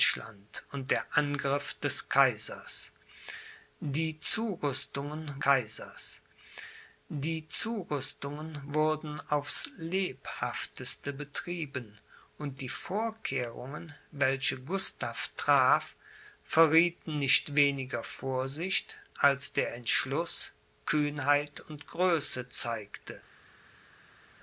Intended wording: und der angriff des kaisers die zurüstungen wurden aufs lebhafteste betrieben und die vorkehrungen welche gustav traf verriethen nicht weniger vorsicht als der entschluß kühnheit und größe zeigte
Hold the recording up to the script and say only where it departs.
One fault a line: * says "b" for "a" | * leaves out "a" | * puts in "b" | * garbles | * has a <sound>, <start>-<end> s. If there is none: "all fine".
* puts in "kaisers die zurüstungen"